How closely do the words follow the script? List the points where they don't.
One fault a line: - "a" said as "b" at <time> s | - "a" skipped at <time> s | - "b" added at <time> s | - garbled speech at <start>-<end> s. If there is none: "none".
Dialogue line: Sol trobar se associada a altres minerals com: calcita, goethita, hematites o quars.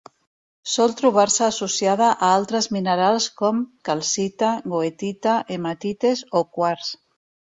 none